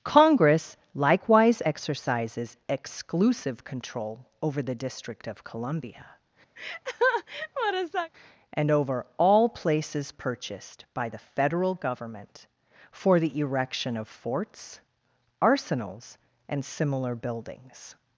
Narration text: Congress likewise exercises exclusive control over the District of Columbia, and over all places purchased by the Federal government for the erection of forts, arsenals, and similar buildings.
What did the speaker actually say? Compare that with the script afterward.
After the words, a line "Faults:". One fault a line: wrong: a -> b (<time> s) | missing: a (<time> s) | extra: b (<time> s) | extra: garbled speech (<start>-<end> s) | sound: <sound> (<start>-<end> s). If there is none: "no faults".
Congress likewise exercises exclusive control over the District of Columbia, and over all places purchased by the Federal government for the erection of forts, arsenals, and similar buildings.
Faults:
sound: laugh (6.6-8.1 s)